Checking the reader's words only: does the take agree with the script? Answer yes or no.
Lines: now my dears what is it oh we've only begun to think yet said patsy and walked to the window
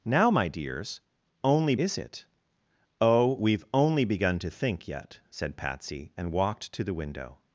no